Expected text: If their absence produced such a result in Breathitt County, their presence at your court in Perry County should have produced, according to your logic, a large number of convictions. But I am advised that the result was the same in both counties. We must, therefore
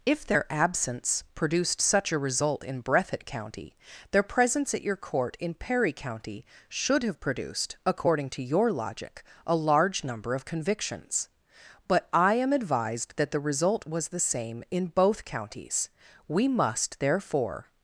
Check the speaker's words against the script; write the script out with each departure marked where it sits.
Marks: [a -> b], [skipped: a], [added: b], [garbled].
If their absence produced such a result in Breathitt County, their presence at your court in Perry County should have produced, according to your logic, a large number of convictions. But I am advised that the result was the same in both counties. We must, therefore